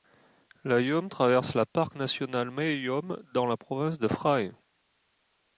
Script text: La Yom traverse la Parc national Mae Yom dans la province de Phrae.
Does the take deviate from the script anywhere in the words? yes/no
no